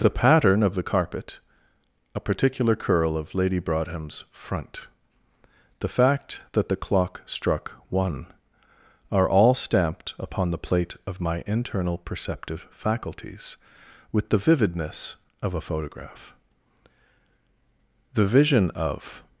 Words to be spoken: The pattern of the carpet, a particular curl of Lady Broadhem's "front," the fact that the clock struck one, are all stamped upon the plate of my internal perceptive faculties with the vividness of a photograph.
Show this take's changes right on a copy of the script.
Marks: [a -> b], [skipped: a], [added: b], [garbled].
The pattern of the carpet, a particular curl of Lady Broadhem's "front," the fact that the clock struck one, are all stamped upon the plate of my internal perceptive faculties with the vividness of a photograph. [added: The vision of]